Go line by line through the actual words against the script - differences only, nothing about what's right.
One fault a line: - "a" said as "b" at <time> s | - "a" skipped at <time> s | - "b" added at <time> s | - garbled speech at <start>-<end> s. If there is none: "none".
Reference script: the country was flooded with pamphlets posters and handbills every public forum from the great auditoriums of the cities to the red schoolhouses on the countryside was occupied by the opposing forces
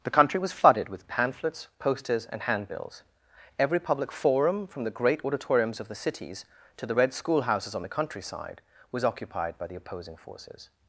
none